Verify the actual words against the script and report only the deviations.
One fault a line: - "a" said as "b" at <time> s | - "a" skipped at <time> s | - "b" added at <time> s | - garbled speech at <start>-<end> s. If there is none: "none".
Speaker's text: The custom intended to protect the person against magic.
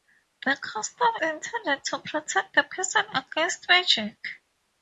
none